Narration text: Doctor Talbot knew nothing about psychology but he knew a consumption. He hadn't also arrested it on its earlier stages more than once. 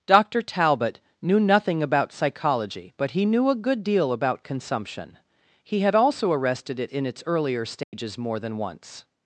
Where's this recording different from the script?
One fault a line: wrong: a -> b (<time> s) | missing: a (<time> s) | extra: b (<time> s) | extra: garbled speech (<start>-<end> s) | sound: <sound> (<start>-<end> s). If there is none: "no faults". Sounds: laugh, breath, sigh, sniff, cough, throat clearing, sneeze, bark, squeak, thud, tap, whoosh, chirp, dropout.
extra: good deal about (3.6 s)
wrong: hadn't -> had (5.8 s)
wrong: on -> in (6.9 s)
sound: dropout (7.8-7.9 s)